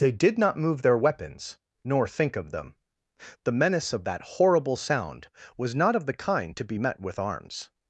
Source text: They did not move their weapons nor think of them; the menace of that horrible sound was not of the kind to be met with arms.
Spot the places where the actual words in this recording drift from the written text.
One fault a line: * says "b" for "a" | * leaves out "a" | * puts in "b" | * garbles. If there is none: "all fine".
all fine